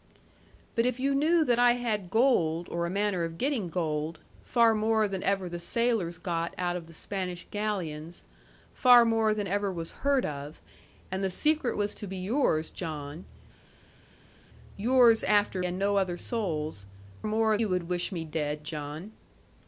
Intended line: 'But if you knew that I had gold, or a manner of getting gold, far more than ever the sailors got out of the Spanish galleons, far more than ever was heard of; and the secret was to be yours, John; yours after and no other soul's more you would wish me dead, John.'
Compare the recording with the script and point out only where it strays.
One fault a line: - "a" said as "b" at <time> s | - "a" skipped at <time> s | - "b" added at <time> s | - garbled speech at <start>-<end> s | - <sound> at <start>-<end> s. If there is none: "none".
none